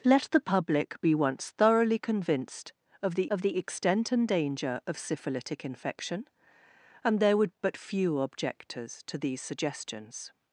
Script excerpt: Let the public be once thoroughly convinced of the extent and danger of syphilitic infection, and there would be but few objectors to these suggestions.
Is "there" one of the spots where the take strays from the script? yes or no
no